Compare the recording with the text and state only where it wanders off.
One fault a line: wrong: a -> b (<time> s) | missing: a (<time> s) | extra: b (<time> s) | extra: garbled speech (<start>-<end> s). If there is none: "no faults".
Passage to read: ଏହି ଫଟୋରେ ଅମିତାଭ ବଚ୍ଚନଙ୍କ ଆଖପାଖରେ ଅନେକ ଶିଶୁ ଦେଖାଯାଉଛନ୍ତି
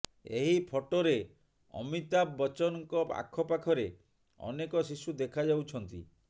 no faults